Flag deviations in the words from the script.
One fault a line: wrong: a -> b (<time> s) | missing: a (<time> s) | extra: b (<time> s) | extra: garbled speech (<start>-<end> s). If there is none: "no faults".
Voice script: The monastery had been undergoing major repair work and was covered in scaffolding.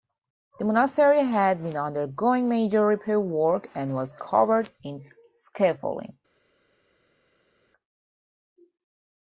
no faults